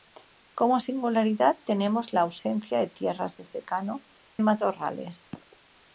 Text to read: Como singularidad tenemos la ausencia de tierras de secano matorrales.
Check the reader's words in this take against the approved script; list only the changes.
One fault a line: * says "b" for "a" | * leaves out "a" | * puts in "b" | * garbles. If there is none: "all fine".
all fine